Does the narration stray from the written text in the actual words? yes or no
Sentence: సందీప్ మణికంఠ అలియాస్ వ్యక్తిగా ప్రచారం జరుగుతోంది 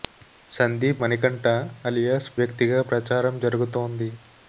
no